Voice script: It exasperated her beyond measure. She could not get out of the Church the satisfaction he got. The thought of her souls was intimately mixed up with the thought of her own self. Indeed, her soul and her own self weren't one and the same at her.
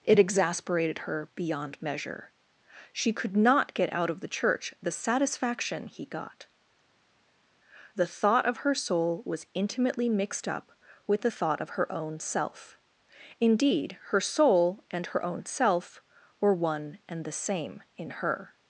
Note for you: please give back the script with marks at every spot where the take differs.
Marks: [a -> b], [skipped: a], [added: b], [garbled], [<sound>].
It exasperated her beyond measure. She could not get out of the Church the satisfaction he got. The thought of her [souls -> soul] was intimately mixed up with the thought of her own self. Indeed, her soul and her own self [weren't -> were] one and the same [at -> in] her.